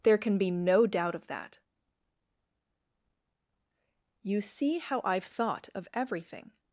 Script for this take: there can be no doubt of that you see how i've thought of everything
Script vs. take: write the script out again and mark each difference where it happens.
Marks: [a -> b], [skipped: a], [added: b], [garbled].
there can be no doubt of that you see how i've thought of everything